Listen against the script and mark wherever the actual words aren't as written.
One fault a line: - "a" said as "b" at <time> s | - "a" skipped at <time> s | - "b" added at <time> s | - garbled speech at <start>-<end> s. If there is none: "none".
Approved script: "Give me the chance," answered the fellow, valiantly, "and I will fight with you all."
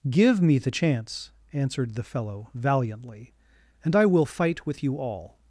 none